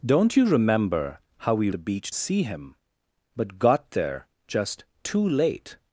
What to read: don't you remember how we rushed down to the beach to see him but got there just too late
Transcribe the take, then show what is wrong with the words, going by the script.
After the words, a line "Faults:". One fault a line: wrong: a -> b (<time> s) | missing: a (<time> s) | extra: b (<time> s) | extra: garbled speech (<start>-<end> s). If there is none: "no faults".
don't you remember how we the beach see him but got there just too late
Faults:
missing: rushed down to (1.7 s)
missing: to (2.1 s)